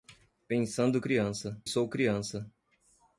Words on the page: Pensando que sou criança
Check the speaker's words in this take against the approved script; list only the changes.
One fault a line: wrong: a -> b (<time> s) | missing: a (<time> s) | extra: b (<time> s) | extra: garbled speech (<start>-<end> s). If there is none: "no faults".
wrong: que -> criança (1.0 s)